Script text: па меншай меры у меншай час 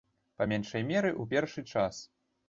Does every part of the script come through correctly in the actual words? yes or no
no